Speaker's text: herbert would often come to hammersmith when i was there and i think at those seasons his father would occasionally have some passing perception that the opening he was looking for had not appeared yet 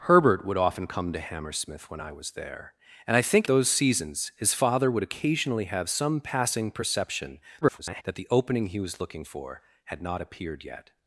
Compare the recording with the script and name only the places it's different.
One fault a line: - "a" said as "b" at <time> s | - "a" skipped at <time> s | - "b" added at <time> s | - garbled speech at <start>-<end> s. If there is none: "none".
- "at" skipped at 3.5 s
- garbled speech at 7.6-8.0 s